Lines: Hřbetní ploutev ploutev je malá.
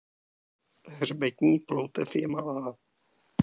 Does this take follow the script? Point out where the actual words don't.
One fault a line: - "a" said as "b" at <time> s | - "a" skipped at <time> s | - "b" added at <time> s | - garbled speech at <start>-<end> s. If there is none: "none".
- "ploutev" skipped at 2.1 s